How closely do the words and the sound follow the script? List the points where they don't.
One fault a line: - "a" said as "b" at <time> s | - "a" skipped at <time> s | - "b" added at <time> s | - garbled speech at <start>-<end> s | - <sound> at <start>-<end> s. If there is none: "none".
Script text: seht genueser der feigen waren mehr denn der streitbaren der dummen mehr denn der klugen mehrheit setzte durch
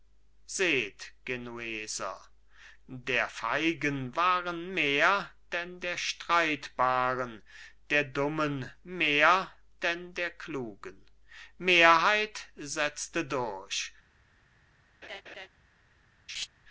- laugh at 15.0-15.5 s
- laugh at 16.3-16.5 s